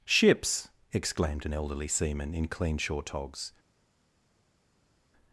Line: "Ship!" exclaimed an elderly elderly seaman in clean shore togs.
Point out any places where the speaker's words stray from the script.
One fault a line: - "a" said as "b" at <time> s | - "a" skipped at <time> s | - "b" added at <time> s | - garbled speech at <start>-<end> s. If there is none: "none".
- "Ship" said as "Ships" at 0.1 s
- "elderly" skipped at 1.9 s